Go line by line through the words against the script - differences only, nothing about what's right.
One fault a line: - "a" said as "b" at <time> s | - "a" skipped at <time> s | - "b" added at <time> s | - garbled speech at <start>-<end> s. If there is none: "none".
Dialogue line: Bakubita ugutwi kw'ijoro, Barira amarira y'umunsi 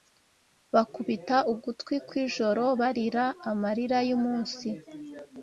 none